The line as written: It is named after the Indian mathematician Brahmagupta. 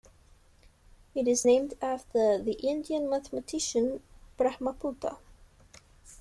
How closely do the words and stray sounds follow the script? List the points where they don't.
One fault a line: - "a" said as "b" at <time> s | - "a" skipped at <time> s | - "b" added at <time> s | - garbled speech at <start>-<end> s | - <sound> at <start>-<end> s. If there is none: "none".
none